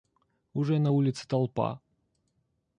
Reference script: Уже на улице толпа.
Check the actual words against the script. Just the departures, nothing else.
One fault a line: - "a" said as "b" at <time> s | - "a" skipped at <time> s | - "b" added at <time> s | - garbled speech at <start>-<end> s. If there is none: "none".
none